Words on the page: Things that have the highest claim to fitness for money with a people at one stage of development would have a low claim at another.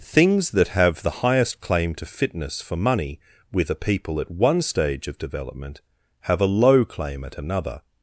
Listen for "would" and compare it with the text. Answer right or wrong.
wrong